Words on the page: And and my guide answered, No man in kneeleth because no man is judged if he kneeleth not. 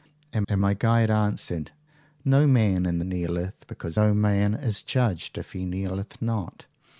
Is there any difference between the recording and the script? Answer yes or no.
no